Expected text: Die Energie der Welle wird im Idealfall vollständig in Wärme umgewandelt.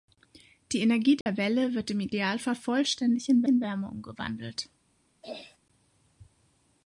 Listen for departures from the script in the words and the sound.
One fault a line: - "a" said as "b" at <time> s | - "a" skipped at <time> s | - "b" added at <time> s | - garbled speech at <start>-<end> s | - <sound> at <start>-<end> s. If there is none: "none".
- dropout at 1.2-1.3 s
- "in" added at 3.5 s
- throat clearing at 5.2-5.6 s